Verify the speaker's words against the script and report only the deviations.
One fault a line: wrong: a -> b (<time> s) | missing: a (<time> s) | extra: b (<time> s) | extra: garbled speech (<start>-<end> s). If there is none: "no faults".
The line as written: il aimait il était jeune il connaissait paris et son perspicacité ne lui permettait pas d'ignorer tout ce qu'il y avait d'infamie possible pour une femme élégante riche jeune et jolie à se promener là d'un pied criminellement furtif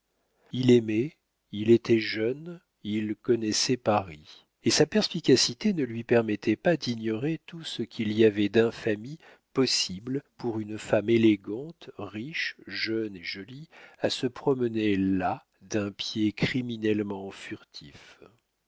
wrong: son -> sa (4.7 s)